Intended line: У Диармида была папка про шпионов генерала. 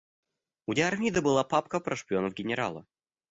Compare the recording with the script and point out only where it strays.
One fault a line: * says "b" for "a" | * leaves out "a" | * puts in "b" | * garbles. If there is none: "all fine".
all fine